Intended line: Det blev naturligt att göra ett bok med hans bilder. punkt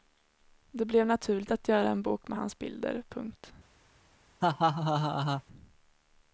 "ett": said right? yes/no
no